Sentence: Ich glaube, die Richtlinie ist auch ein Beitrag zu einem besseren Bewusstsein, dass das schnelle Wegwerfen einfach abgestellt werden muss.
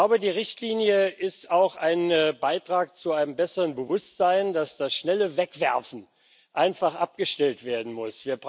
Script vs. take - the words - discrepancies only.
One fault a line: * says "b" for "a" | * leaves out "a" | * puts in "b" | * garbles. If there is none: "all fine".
all fine